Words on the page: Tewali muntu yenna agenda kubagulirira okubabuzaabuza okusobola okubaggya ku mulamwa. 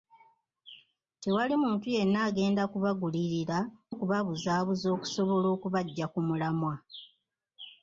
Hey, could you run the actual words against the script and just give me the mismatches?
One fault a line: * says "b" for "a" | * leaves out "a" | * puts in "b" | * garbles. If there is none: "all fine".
all fine